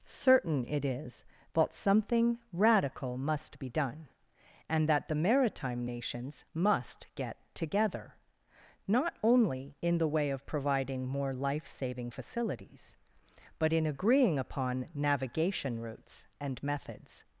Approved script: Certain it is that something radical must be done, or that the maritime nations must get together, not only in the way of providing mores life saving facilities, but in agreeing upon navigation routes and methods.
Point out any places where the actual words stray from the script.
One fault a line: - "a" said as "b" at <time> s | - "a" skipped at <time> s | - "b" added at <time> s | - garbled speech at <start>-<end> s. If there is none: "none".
- "or" said as "and" at 4.7 s
- "mores" said as "more" at 11.1 s